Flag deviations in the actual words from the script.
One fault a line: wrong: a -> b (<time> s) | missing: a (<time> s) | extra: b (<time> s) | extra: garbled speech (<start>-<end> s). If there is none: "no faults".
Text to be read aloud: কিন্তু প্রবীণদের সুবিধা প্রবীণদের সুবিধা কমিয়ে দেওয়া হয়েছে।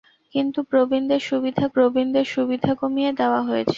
no faults